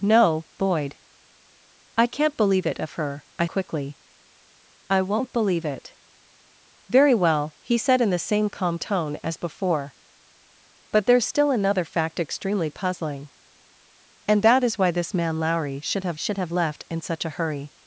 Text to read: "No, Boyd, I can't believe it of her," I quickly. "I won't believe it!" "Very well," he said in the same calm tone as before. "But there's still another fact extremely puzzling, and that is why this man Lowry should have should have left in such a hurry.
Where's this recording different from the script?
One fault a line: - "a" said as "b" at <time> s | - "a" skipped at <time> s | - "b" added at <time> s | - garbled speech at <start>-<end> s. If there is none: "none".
none